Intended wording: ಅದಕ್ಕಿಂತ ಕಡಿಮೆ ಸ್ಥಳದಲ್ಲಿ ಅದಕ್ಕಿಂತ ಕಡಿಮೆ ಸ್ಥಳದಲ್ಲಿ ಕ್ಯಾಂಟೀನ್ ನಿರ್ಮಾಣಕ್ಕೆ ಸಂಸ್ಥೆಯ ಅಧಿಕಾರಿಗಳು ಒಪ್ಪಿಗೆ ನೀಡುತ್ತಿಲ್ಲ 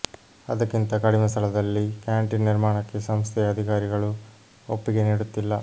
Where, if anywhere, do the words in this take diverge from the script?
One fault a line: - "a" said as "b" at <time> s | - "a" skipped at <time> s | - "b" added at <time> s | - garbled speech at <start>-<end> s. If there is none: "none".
- "ಅದಕ್ಕಿಂತ ಕಡಿಮೆ ಸ್ಥಳದಲ್ಲಿ" skipped at 1.8 s